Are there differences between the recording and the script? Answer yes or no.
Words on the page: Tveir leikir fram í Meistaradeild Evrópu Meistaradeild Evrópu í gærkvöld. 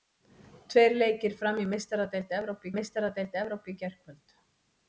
no